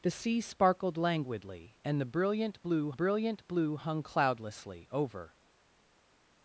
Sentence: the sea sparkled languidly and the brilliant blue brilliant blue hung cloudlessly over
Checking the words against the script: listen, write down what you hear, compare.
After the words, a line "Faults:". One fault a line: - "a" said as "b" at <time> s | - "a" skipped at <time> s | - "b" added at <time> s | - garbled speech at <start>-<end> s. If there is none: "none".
the sea sparkled languidly and the brilliant blue brilliant blue hung cloudlessly over
Faults:
none